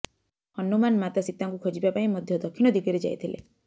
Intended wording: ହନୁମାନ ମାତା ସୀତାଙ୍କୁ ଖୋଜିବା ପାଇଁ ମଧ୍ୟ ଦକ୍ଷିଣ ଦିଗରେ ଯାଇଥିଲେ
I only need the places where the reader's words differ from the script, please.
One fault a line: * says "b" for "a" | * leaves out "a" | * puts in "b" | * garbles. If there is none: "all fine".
all fine